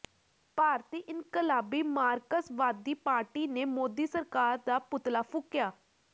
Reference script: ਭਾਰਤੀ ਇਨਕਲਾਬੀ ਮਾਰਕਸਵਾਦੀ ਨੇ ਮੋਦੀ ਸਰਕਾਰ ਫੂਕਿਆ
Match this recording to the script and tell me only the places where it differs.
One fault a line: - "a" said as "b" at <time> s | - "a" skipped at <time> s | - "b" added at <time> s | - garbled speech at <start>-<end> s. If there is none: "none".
- "ਪਾਰਟੀ" added at 3.0 s
- "ਦਾ ਪੁਤਲਾ" added at 4.7 s